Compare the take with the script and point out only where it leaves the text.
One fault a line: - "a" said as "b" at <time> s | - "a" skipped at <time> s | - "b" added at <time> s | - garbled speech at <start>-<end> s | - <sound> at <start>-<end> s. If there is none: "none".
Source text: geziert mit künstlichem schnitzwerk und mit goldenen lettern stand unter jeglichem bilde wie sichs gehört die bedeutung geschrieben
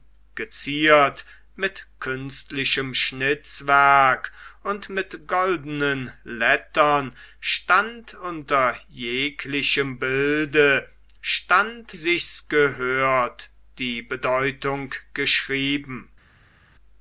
- "wie" said as "stand" at 11.2 s